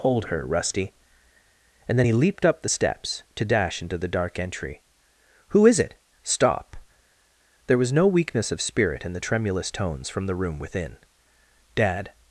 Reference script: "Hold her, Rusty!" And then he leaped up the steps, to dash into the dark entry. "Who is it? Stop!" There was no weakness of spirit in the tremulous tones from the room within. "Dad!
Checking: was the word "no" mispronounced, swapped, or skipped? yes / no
no